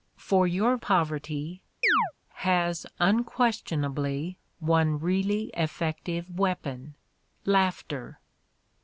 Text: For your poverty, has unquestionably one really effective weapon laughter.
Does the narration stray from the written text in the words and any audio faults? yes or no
yes